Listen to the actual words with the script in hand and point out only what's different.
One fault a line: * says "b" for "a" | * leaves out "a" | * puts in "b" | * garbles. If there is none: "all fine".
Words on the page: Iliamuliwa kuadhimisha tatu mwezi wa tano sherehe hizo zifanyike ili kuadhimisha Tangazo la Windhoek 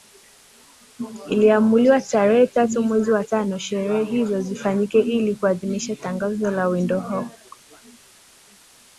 * says "tarehe" for "kuadhimisha"